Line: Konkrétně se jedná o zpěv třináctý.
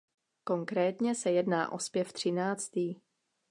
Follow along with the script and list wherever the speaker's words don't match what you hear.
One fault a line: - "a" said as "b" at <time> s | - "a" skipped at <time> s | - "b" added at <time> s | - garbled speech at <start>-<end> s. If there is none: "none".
none